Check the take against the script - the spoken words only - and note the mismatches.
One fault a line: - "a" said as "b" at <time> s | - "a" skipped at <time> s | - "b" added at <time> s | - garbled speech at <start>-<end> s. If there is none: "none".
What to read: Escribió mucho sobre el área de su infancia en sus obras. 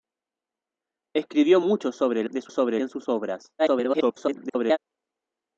- "área" skipped at 2.3 s
- "infancia" said as "sobre" at 2.5 s
- garbled speech at 3.6-4.8 s